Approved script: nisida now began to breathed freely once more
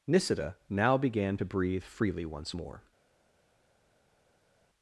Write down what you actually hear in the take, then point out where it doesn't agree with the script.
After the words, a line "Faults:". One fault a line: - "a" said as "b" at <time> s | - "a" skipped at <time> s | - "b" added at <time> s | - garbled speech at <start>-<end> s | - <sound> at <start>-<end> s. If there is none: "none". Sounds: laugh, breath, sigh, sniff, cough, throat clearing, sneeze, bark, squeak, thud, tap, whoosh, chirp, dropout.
nisida now began to breathe freely once more
Faults:
- "breathed" said as "breathe" at 1.4 s